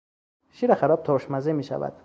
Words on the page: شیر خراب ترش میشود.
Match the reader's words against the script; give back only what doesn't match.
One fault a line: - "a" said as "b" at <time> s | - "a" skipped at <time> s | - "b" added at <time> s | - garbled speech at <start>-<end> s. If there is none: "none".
- "مزه" added at 1.3 s